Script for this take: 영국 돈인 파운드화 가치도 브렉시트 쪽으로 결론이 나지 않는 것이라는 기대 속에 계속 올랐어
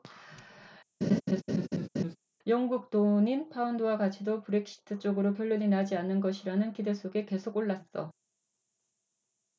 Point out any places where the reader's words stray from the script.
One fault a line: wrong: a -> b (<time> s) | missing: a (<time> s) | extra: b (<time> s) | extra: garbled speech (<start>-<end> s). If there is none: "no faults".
no faults